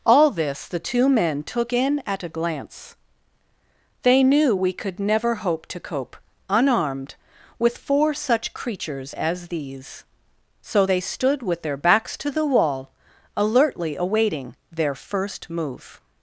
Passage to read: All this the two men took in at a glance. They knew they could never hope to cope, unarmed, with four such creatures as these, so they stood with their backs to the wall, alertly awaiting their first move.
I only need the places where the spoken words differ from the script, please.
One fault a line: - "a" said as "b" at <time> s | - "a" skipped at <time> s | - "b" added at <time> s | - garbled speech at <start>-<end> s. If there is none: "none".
- "they" said as "we" at 4.5 s